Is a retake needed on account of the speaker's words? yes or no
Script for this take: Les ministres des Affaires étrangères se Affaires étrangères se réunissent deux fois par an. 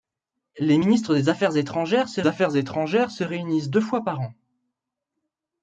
no